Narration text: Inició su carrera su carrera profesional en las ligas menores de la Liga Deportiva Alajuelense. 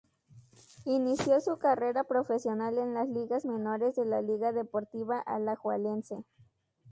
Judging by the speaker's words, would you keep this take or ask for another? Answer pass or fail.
fail